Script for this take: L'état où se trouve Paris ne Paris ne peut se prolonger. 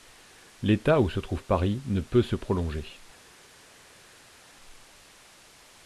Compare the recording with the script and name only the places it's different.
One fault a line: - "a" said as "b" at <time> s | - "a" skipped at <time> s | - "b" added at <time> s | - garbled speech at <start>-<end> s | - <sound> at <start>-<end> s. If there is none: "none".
- "Paris ne" skipped at 2.0 s